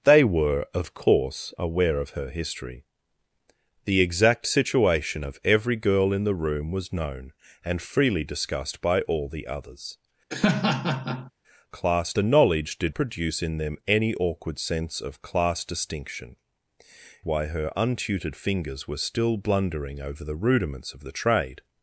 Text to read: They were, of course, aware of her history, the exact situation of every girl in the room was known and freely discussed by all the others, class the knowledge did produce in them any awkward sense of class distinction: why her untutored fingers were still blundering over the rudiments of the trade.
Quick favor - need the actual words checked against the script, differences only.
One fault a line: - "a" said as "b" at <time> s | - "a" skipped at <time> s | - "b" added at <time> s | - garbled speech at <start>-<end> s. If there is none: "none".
none